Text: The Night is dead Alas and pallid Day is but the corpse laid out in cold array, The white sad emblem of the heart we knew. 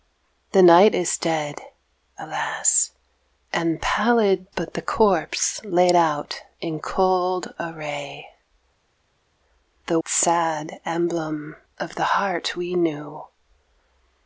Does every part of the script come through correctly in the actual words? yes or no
no